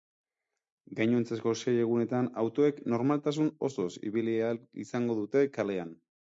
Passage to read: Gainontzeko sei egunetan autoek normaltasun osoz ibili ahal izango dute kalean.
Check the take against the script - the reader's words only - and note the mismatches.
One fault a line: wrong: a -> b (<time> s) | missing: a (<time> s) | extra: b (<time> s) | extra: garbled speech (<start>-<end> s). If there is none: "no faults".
no faults